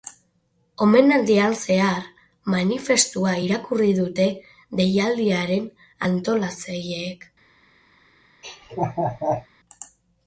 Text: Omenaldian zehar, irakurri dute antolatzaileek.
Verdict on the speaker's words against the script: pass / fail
fail